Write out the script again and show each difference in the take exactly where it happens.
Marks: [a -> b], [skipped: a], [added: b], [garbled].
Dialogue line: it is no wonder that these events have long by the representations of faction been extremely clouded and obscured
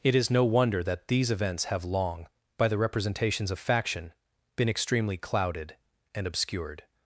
it is no wonder that these events have long by the representations of faction been extremely clouded and obscured